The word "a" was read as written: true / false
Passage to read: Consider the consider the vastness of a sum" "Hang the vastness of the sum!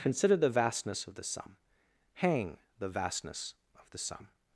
false